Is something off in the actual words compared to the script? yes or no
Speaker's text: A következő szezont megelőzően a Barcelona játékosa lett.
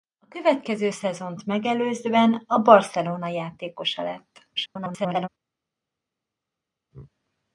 yes